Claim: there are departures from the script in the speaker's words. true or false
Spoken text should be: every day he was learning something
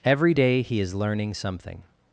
true